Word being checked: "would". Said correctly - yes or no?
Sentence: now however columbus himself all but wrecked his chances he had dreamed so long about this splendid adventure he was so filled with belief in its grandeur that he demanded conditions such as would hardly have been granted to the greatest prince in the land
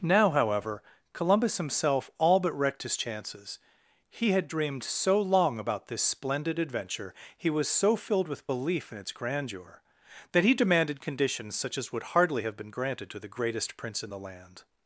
yes